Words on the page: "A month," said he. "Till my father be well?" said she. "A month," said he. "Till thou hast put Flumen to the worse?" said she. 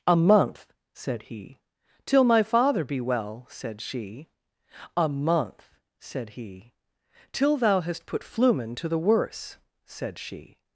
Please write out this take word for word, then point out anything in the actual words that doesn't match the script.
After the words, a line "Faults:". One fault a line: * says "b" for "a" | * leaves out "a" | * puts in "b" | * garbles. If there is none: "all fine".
"A month," said he. "Till my father be well?" said she. "A month," said he. "Till thou hast put Flumen to the worse?" said she.
Faults:
all fine